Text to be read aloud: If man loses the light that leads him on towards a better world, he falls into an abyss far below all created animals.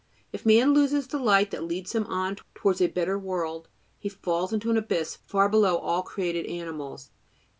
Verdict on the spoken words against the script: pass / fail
pass